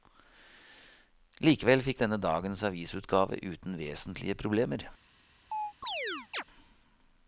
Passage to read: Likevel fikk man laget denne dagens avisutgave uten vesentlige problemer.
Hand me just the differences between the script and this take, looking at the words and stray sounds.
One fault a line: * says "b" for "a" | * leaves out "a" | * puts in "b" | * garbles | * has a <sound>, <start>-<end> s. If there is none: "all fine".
* leaves out "man laget"
* has a chirp, 5.5-6.4 s